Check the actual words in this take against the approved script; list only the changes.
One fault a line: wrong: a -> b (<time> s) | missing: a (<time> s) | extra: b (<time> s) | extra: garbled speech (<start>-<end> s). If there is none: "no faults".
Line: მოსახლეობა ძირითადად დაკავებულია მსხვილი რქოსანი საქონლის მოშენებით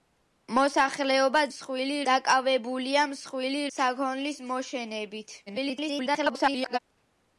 wrong: ძირითადად -> მსხვილი (1.5 s)
missing: რქოსანი (3.6 s)
extra: garbled speech (5.5-6.8 s)